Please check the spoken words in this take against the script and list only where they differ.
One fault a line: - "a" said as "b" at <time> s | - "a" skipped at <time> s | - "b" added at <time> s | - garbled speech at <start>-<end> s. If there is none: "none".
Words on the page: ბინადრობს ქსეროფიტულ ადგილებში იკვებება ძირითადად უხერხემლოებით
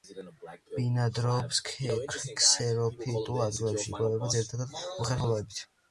none